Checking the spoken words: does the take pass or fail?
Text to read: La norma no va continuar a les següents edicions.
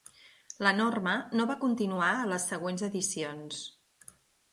pass